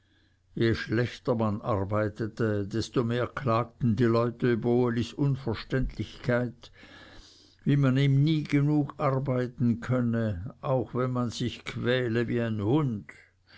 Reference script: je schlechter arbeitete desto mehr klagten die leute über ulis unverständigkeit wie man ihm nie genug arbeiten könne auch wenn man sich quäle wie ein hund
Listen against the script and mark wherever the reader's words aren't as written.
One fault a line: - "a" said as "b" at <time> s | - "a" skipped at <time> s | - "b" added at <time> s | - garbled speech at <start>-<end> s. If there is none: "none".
- "man" added at 1.4 s